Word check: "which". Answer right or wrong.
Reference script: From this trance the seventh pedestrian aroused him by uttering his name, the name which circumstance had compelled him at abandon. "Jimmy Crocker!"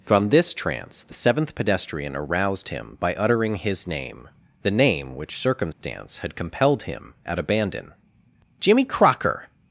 right